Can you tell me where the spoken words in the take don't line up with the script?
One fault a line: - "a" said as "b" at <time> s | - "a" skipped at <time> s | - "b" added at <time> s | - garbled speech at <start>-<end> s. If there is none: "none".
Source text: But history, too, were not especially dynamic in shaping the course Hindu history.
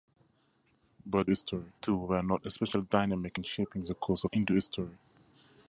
none